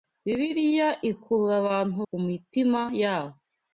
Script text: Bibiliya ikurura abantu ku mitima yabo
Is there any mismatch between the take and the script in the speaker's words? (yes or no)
no